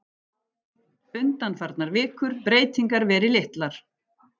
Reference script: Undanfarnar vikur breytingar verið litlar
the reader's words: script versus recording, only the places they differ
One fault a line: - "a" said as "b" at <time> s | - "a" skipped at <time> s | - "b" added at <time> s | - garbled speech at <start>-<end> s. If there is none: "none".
none